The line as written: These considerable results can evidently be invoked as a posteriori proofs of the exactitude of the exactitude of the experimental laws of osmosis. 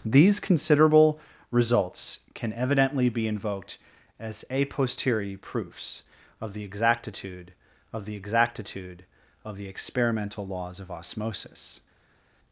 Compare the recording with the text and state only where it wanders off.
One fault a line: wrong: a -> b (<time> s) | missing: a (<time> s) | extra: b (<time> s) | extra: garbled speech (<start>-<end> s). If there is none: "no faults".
no faults